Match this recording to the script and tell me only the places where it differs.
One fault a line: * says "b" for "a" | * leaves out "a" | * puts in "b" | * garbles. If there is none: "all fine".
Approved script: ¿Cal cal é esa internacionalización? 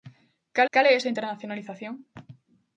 all fine